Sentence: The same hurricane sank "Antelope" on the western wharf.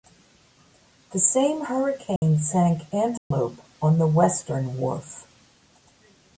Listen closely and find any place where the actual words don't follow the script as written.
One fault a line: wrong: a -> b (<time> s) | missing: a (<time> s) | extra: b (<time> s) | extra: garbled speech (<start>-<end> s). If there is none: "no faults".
no faults